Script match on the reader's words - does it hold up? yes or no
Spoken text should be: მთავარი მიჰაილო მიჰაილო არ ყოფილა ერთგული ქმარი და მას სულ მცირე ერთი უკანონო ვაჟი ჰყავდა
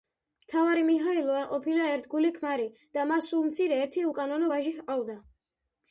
no